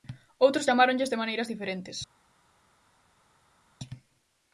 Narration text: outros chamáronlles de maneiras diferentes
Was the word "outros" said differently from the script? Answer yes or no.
no